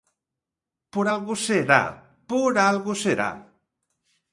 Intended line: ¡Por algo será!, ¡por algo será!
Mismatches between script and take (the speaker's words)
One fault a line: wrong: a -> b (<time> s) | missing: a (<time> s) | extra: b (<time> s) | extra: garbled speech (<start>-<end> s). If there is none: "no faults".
no faults